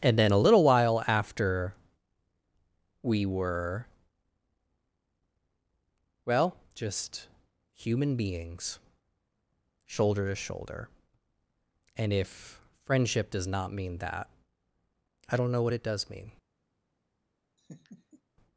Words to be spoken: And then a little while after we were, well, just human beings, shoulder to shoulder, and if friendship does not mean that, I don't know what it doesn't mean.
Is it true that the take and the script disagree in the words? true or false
true